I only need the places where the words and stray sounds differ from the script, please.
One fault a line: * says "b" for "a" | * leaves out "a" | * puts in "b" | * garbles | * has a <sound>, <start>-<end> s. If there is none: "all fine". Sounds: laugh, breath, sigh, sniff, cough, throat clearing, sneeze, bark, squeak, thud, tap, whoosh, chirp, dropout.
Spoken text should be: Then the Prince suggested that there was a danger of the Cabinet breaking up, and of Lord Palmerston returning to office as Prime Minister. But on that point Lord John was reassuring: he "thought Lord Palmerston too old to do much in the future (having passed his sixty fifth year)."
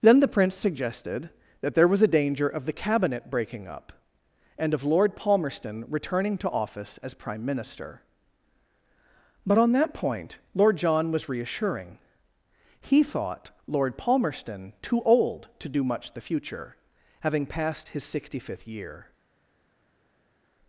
* leaves out "in"